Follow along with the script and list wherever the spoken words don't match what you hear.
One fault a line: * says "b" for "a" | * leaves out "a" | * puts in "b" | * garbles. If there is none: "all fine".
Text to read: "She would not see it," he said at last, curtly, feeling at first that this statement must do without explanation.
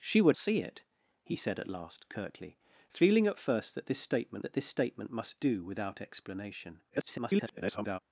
* leaves out "not"
* puts in "that this statement"
* garbles